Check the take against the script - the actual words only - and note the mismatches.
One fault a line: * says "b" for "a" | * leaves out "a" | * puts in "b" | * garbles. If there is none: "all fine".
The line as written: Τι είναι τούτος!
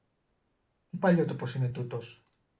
* puts in "παλιότοπος"